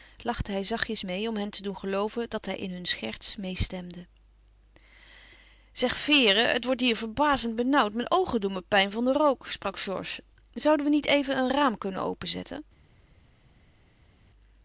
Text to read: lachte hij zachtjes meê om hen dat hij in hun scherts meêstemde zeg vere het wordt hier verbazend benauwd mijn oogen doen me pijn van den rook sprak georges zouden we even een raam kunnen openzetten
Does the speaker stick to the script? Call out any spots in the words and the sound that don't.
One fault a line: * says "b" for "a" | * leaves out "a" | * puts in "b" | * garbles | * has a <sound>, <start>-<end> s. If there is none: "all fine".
* puts in "te doen gelooven"
* puts in "niet"